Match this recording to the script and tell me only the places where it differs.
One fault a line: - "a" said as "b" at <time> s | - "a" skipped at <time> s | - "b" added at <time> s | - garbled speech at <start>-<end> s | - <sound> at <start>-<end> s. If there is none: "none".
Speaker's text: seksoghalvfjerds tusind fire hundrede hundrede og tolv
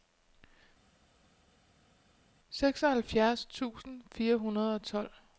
- "hundrede" skipped at 4.7 s